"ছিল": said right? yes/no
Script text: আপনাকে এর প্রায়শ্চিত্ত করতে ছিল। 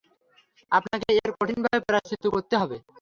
no